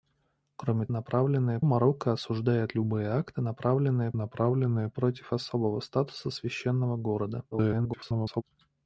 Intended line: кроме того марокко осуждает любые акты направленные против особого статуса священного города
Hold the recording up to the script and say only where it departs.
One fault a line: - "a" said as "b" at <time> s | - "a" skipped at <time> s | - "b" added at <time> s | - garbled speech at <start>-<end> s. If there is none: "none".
- "того" said as "направленные" at 0.9 s
- "направленные" added at 4.2 s
- garbled speech at 7.5-8.4 s